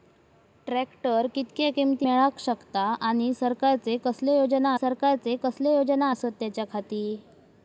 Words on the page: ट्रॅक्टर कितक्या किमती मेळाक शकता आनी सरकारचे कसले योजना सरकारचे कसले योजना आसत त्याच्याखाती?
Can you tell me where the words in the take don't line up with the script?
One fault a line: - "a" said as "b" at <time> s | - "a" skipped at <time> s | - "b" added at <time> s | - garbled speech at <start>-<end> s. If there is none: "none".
none